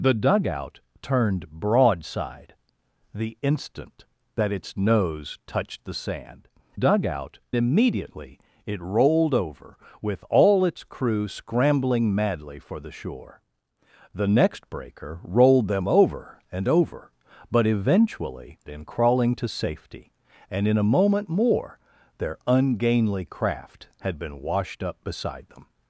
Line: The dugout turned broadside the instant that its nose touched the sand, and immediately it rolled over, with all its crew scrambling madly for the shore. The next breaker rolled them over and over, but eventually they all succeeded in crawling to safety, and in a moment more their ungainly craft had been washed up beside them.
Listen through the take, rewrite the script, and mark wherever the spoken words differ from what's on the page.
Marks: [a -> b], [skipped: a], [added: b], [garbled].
The dugout turned broadside the instant that its nose touched the sand, [and -> dugout] immediately it rolled over, with all its crew scrambling madly for the shore. The next breaker rolled them over and over, but eventually [skipped: they all succeeded] in crawling to safety, and in a moment more their ungainly craft had been washed up beside them.